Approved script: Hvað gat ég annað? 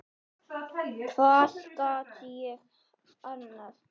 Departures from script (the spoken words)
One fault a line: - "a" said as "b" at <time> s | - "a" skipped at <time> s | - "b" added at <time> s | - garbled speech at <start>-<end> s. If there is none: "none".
none